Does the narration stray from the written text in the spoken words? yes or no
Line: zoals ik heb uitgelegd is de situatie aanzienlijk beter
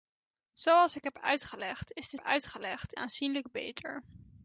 yes